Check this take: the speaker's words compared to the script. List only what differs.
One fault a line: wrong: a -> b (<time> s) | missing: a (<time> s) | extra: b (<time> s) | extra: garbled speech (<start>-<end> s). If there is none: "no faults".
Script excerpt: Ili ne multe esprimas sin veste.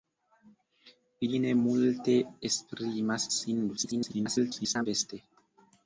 extra: garbled speech (3.8-4.9 s)